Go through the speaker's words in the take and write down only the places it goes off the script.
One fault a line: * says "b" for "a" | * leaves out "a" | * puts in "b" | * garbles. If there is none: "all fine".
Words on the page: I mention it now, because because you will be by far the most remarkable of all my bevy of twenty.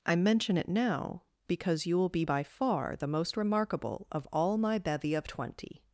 * leaves out "because"